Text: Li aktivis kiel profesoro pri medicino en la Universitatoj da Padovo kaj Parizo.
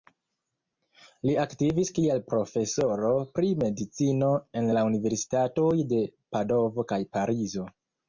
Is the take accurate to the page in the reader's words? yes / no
no